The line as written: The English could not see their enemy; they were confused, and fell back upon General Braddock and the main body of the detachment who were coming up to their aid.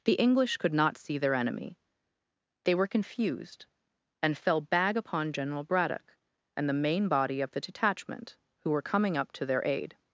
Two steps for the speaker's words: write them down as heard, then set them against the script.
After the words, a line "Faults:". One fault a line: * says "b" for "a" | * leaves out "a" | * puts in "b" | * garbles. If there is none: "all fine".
The English could not see their enemy; they were confused, and fell bag upon General Braddock and the main body of the detachment who were coming up to their aid.
Faults:
* says "bag" for "back"